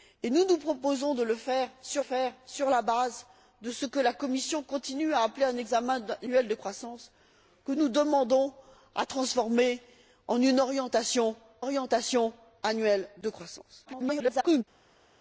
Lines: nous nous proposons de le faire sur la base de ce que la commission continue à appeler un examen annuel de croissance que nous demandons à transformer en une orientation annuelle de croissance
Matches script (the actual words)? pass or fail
fail